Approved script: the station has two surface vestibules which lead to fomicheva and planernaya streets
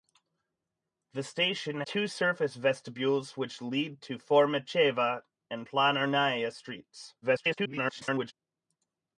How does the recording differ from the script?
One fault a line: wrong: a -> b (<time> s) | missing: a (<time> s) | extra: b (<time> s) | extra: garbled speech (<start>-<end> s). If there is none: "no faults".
missing: has (1.8 s)
extra: garbled speech (7.2-8.3 s)